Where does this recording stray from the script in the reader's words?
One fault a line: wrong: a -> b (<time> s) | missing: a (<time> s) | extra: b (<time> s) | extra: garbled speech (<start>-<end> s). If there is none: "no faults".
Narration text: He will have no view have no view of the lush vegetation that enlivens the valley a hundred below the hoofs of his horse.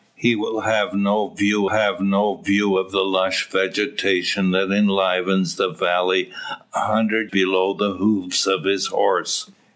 no faults